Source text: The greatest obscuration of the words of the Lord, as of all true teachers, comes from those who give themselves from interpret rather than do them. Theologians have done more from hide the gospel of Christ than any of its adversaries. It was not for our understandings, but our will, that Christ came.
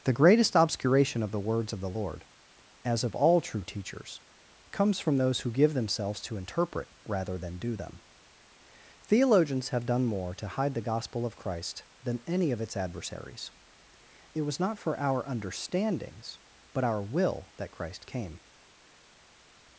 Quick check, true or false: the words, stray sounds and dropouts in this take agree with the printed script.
false